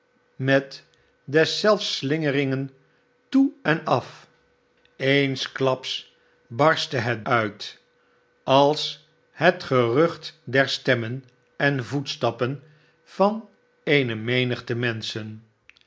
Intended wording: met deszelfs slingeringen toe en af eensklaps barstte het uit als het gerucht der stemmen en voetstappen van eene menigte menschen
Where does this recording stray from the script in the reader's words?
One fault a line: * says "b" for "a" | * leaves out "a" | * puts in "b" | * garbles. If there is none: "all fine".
all fine